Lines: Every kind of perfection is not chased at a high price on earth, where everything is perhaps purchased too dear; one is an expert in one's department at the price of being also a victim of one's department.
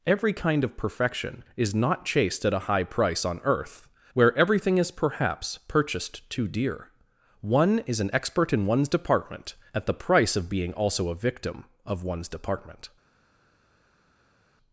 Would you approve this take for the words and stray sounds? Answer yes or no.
yes